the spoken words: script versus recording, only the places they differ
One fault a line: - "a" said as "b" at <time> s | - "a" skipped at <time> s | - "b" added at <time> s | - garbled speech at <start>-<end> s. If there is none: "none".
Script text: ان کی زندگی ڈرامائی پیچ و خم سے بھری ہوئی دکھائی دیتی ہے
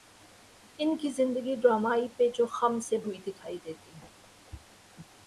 - "بھری" skipped at 3.0 s